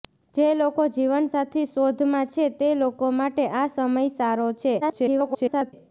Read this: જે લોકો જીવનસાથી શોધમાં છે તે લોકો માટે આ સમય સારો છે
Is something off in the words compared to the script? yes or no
yes